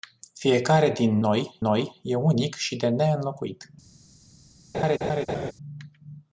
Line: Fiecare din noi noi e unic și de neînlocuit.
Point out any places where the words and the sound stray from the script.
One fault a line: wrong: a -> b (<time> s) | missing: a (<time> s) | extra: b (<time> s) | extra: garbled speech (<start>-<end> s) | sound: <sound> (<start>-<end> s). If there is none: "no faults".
sound: laugh (4.7-5.5 s)